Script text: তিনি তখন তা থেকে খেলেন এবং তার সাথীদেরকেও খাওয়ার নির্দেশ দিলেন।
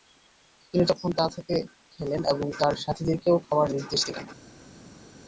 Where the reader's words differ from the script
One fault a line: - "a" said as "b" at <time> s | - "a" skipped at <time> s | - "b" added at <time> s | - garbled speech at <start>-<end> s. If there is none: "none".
none